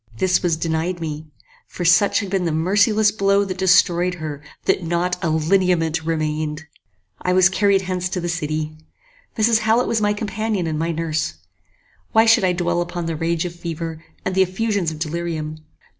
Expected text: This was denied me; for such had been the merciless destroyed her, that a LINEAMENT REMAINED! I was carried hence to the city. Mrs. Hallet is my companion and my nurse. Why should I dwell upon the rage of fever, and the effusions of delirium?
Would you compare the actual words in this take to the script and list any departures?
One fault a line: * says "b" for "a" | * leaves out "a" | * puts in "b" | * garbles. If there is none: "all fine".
* puts in "blow that"
* puts in "not"
* says "was" for "is"